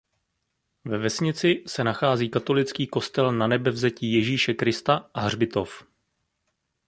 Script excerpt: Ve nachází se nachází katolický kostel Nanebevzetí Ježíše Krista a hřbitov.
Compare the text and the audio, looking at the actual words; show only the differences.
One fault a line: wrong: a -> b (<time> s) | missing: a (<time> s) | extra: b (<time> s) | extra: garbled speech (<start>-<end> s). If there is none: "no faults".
wrong: nachází -> vesnici (1.0 s)